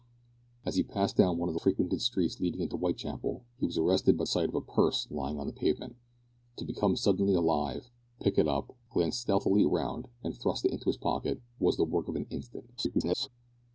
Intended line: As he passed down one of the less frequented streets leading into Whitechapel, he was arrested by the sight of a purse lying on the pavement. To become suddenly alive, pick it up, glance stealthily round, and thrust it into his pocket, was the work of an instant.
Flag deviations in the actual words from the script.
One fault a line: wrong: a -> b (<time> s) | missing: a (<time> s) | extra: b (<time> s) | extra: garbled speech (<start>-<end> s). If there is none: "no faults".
missing: less (1.6 s)
missing: the (4.2 s)
extra: garbled speech (12.8-13.3 s)